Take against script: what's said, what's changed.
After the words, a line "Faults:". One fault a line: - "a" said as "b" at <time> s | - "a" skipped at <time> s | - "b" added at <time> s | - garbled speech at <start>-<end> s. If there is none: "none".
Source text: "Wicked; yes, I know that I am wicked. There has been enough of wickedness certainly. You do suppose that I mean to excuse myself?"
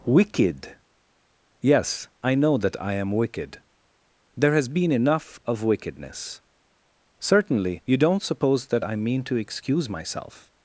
"Wicked; yes, I know that I am wicked. There has been enough of wickedness certainly. You don't suppose that I mean to excuse myself?"
Faults:
- "do" said as "don't" at 8.0 s